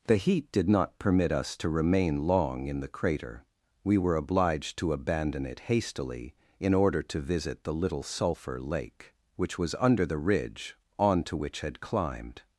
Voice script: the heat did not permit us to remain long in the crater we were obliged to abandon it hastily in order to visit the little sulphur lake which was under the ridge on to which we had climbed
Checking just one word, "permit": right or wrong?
right